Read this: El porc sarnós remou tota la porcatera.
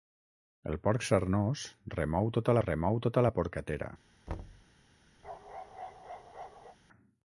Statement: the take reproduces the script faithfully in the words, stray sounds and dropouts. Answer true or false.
false